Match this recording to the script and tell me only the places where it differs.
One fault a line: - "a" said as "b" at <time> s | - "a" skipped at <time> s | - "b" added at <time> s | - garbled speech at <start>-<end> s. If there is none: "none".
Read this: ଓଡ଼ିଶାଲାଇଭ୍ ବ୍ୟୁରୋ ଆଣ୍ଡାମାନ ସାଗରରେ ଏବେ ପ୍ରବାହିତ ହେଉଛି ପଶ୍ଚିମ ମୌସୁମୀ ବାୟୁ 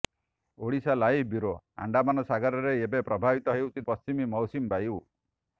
none